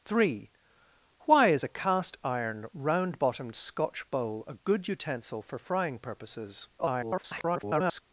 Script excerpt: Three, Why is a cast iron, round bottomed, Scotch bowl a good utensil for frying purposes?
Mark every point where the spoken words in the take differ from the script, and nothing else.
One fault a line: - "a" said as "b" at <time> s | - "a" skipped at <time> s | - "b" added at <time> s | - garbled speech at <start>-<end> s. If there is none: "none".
- garbled speech at 6.8-8.0 s